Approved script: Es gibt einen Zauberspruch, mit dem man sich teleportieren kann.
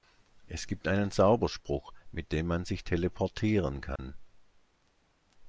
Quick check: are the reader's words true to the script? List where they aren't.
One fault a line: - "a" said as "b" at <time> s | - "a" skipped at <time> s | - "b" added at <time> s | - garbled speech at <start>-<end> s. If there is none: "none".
none